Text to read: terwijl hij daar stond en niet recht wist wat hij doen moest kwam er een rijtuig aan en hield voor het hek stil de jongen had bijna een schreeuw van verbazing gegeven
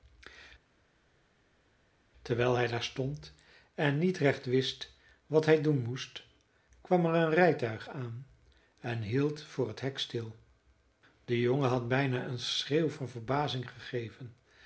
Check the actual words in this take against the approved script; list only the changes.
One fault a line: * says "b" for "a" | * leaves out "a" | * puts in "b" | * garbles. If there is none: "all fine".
all fine